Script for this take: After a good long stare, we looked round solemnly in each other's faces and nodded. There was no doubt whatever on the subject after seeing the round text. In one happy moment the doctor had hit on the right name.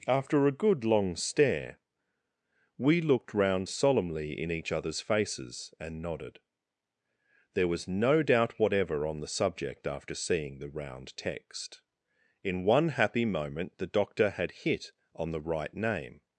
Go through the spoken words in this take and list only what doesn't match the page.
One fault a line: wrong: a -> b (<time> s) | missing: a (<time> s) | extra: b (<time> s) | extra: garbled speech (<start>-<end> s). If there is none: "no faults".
no faults